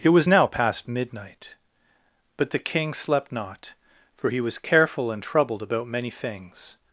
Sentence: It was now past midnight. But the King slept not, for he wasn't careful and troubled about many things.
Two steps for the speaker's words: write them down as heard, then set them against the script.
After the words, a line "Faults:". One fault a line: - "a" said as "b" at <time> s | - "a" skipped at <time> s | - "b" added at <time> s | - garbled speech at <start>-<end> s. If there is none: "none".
It was now past midnight. But the King slept not, for he was careful and troubled about many things.
Faults:
- "wasn't" said as "was" at 4.4 s